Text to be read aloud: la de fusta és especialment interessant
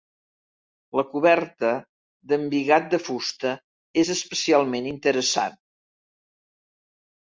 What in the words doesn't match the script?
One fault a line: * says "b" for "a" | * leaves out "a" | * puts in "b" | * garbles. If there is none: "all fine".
* puts in "coberta d'embigat"